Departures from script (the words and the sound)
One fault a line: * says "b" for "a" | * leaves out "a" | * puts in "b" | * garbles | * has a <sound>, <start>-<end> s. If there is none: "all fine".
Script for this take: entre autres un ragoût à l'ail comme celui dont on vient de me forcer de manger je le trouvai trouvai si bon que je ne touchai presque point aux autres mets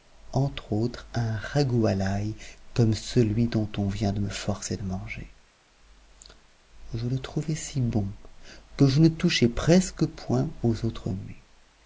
* leaves out "trouvai"